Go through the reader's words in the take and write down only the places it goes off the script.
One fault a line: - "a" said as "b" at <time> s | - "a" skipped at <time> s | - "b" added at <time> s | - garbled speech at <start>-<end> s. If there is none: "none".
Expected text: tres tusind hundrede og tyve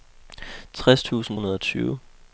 none